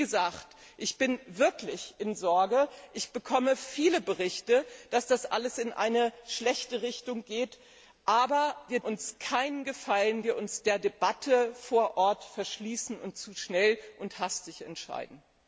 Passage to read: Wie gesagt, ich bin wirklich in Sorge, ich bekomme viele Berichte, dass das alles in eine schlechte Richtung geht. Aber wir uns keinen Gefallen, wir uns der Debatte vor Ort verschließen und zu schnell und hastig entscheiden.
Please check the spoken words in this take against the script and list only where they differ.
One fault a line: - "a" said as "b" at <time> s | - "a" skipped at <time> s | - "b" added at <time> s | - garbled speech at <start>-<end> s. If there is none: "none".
none